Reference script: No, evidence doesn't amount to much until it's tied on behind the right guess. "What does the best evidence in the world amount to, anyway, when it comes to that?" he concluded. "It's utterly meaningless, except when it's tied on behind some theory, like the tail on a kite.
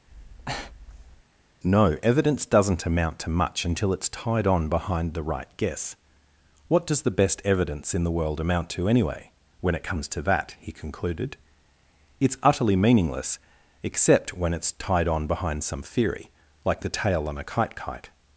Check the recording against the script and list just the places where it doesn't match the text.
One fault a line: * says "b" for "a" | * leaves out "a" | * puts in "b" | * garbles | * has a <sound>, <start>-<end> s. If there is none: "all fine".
* has a breath, 0.1-1.2 s
* puts in "kite"